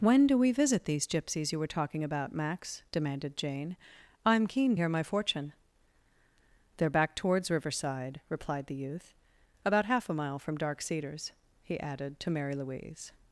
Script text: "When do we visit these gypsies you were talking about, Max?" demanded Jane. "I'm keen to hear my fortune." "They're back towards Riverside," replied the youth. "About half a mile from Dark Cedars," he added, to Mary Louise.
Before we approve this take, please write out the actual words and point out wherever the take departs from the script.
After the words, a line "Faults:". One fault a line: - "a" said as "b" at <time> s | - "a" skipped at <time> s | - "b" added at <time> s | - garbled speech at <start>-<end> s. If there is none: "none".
"When do we visit these gypsies you were talking about, Max?" demanded Jane. "I'm keen hear my fortune." "They're back towards Riverside," replied the youth. "About half a mile from Dark Cedars," he added, to Mary Louise.
Faults:
- "to" skipped at 4.8 s